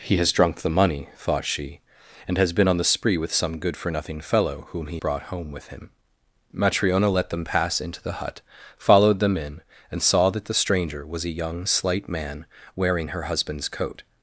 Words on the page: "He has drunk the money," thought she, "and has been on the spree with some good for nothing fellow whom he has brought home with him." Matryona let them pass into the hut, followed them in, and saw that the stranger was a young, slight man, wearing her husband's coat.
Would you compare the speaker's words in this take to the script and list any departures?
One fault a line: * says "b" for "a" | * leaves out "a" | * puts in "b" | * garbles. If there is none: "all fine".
* leaves out "has"